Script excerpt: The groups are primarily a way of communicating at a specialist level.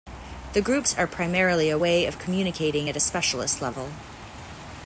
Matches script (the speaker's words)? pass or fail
pass